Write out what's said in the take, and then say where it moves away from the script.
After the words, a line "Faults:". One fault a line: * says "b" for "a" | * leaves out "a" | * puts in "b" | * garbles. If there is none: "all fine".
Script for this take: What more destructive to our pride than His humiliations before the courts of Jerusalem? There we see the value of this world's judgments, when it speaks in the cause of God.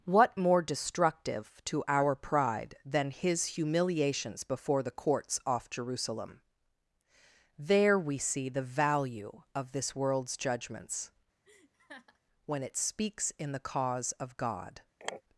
What more destructive to our pride than His humiliations before the courts off Jerusalem? There we see the value of this world's judgments, when it speaks in the cause of God.
Faults:
* says "off" for "of"